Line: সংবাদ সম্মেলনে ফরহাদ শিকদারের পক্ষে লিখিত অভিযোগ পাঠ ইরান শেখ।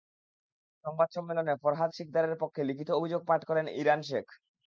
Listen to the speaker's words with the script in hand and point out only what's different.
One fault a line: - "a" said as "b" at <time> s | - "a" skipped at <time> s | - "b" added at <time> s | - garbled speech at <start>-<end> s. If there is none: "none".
- "করেন" added at 3.5 s